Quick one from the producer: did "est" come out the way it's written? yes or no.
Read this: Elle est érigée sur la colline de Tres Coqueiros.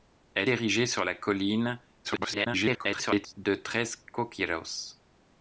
no